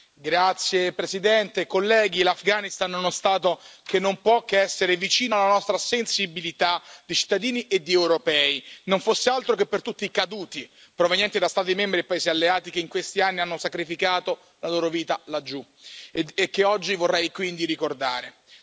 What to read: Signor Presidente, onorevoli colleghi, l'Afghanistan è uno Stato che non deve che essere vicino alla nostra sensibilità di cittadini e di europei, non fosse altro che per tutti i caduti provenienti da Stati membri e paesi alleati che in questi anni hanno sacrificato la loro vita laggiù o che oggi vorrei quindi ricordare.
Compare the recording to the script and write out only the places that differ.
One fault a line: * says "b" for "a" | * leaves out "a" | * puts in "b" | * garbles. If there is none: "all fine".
* says "può" for "deve"
* says "e" for "o"